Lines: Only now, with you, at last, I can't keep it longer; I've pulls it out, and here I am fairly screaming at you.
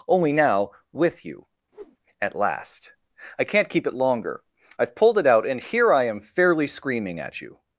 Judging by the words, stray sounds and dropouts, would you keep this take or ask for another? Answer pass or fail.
fail